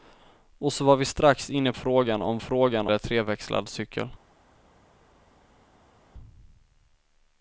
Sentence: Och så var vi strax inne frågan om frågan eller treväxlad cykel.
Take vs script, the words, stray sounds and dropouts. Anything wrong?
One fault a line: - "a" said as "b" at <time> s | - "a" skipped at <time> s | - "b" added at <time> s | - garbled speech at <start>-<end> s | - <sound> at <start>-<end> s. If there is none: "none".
none